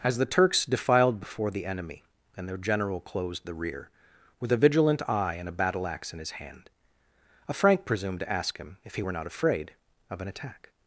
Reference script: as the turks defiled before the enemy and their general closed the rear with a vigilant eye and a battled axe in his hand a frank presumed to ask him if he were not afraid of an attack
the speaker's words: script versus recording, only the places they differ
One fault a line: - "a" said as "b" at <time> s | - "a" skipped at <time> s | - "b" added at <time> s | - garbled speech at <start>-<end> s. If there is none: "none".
- "battled" said as "battle" at 5.5 s